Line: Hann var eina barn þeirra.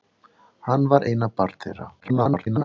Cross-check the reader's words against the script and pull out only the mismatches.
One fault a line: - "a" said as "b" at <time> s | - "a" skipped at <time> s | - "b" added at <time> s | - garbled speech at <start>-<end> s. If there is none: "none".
- garbled speech at 2.0-2.6 s